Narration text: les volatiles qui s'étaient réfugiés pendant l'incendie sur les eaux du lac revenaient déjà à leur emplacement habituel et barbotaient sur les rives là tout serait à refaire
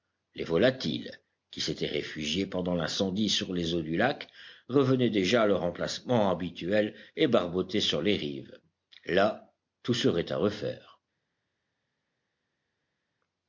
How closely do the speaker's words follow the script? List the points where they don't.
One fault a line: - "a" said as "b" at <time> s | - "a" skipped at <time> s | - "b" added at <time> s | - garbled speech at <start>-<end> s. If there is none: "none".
none